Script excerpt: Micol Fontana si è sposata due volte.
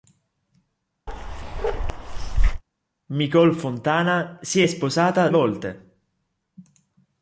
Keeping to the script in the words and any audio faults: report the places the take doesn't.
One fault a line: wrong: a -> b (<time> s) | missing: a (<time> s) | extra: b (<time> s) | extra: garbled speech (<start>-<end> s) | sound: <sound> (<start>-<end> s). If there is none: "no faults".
sound: bark (1.1-2.6 s)
missing: due (5.3 s)